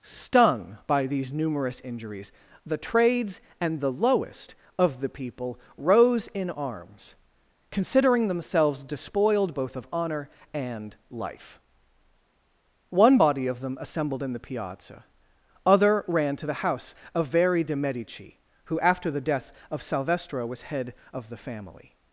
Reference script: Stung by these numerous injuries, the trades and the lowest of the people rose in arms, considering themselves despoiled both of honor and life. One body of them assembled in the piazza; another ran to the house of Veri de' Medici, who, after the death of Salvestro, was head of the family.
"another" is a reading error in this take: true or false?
true